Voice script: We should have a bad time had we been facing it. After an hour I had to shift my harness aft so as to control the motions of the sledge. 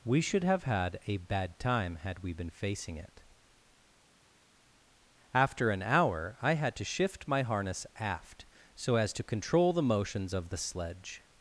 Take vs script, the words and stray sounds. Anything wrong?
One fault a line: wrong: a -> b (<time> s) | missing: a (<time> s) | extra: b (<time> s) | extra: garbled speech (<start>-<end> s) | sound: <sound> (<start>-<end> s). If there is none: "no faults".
extra: had (0.6 s)